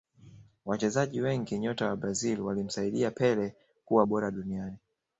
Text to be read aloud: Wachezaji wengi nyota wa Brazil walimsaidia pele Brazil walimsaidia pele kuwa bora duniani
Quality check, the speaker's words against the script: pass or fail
fail